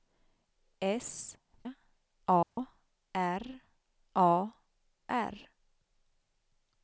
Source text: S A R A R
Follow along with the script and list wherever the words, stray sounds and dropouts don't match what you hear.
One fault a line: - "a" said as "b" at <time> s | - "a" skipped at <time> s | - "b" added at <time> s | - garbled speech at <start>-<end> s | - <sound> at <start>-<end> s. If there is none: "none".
- dropout at 2.4-2.6 s